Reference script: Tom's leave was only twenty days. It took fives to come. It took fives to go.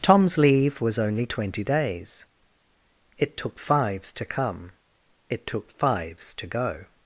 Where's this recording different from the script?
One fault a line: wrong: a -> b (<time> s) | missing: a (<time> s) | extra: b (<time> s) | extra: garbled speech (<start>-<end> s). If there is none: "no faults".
no faults